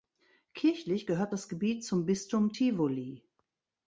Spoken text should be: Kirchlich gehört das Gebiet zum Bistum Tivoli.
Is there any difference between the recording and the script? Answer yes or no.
no